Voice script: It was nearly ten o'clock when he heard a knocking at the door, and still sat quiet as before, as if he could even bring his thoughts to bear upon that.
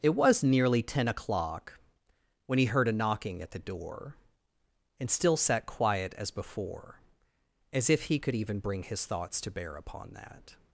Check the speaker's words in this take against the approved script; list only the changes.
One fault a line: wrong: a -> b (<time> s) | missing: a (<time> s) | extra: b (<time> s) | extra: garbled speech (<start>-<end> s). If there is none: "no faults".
no faults